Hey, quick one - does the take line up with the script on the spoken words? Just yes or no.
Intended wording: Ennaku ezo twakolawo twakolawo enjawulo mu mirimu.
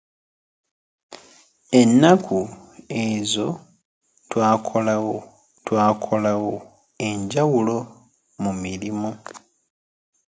yes